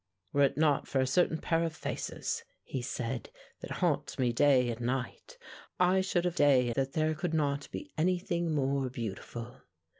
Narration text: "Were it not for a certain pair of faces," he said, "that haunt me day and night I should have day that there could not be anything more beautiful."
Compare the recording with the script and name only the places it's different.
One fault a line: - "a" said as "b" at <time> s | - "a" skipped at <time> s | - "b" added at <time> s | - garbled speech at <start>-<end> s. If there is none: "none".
none